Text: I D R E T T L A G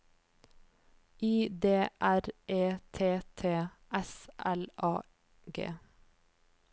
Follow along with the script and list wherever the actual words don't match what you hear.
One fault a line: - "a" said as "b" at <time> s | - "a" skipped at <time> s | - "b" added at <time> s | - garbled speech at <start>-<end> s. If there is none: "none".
- "S" added at 3.9 s